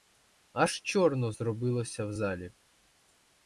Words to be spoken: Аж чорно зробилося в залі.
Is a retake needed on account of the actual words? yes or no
no